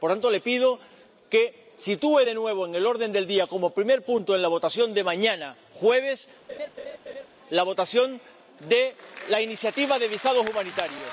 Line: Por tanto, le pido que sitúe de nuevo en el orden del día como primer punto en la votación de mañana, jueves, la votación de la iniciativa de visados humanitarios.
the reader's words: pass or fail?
pass